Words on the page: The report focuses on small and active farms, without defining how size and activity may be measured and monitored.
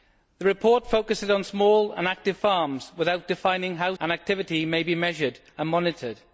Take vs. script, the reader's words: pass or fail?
fail